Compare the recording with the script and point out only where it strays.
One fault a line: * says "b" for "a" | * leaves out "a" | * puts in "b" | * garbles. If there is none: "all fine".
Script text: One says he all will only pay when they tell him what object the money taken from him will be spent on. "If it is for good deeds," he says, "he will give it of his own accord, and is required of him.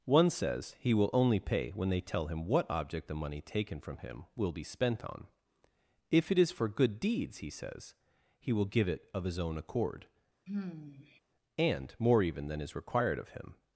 * leaves out "all"
* puts in "more even than"